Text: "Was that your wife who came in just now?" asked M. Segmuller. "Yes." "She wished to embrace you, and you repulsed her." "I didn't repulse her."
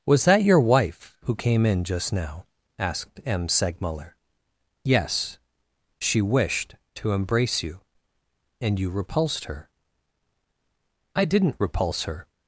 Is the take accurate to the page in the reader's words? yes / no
yes